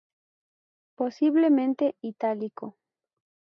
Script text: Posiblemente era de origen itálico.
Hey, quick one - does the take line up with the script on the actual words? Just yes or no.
no